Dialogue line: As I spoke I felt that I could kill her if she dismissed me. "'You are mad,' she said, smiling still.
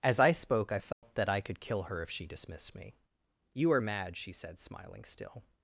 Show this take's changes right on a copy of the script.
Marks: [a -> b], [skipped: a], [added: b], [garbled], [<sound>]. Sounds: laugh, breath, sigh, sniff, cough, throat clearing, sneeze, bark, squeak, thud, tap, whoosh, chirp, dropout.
As I spoke I felt [dropout] that I could kill her if she dismissed me. "'You are mad,' she said, smiling still.